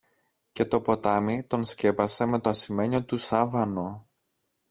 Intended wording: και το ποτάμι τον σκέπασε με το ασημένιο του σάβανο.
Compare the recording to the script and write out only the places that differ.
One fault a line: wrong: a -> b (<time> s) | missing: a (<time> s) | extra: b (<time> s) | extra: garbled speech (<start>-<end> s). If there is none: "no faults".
no faults